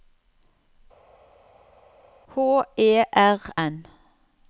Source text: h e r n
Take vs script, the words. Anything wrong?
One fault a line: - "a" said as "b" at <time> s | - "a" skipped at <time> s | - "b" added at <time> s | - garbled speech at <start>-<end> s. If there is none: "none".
none